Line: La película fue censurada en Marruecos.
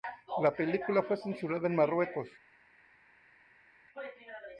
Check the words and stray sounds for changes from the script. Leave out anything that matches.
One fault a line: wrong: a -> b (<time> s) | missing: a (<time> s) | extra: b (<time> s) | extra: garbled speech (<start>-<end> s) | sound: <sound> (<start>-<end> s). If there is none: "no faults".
no faults